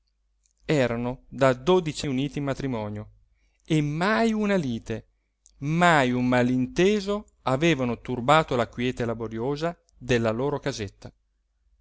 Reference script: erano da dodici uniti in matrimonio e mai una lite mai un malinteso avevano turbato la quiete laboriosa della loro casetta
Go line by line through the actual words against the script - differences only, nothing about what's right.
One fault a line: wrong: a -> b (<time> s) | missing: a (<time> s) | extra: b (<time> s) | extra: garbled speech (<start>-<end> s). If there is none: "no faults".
no faults